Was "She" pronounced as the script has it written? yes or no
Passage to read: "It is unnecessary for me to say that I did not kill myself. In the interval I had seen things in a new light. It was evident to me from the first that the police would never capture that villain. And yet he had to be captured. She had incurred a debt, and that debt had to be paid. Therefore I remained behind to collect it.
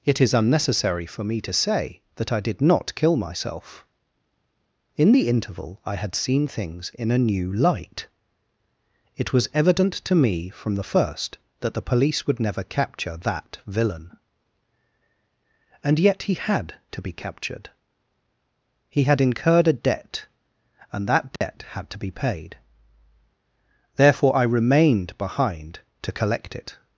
no